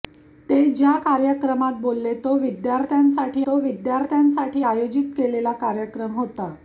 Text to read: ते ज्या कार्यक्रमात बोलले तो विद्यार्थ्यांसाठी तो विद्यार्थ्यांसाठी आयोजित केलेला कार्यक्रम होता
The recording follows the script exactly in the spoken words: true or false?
true